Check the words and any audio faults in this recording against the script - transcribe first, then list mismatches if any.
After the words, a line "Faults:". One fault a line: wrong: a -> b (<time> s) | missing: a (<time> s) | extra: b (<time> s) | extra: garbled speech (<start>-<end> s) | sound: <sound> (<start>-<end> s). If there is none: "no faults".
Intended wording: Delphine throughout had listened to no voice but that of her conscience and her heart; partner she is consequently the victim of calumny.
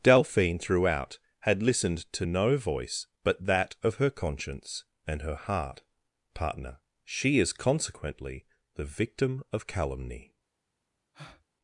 Delphine throughout had listened to no voice but that of her conscience and her heart; partner she is consequently the victim of calumny.
Faults:
sound: breath (11.1-11.4 s)